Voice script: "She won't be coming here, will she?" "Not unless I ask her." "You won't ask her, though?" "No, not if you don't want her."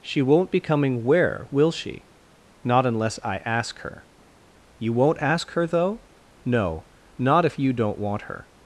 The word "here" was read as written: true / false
false